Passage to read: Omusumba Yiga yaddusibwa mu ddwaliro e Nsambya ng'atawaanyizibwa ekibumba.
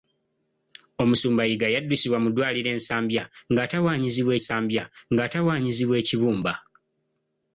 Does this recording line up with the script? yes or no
no